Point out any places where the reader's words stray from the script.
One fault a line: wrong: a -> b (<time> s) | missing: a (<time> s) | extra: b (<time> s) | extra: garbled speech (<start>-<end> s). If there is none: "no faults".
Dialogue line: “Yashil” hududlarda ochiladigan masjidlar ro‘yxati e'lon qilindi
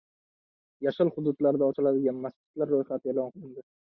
no faults